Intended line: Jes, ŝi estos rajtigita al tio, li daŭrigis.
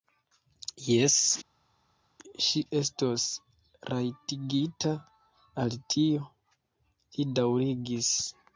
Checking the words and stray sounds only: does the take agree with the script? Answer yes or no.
yes